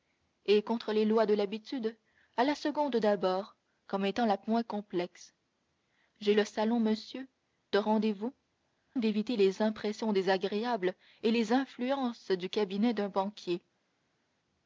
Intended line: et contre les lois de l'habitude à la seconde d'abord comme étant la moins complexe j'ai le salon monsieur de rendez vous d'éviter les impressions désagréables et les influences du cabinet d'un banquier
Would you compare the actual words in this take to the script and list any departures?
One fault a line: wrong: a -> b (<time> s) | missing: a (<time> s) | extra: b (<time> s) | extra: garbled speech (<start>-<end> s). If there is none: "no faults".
no faults